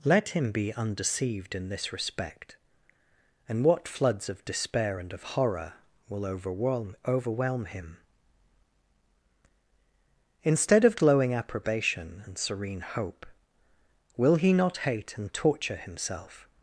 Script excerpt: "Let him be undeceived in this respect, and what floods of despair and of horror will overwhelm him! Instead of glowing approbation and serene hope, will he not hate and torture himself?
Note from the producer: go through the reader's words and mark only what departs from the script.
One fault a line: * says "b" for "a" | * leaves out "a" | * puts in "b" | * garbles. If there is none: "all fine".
* puts in "overwhelm"